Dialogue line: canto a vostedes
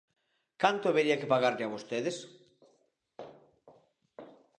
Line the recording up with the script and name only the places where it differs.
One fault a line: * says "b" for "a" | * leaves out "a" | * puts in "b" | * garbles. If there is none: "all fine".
* puts in "habería que pagarlle"